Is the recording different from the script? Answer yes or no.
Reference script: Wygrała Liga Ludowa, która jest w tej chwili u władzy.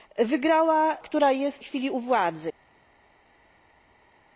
yes